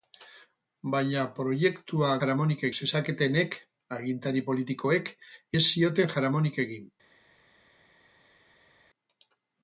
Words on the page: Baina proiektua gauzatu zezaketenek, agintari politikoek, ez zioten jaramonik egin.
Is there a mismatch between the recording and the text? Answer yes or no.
yes